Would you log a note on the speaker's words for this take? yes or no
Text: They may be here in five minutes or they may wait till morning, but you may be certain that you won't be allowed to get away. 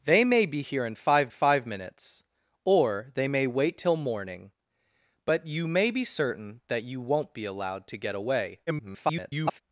yes